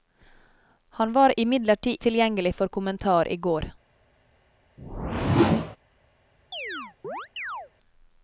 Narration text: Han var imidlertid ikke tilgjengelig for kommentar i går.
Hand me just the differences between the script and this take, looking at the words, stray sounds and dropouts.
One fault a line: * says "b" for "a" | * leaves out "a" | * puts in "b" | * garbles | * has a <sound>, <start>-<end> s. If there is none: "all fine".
* leaves out "ikke"
* has a whoosh, 4.8-5.8 s
* has a chirp, 6.5-7.7 s